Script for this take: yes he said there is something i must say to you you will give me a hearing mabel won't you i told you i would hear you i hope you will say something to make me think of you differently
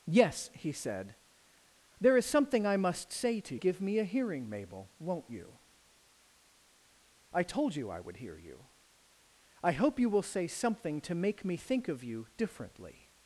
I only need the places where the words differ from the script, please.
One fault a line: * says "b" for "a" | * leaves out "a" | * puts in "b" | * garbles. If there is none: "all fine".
* leaves out "you you will"